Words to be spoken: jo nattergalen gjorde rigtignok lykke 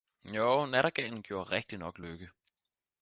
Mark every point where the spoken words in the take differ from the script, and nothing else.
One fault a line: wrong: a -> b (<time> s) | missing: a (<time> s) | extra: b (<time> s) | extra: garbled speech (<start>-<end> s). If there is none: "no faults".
no faults